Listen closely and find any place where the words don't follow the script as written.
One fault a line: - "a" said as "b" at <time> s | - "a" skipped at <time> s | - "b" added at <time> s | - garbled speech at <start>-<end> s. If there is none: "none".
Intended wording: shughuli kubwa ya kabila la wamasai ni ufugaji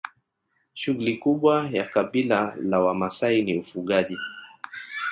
none